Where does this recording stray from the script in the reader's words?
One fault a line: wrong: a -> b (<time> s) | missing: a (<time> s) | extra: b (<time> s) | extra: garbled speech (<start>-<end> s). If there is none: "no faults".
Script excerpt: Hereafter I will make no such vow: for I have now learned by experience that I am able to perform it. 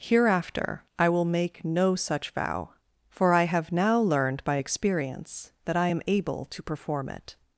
no faults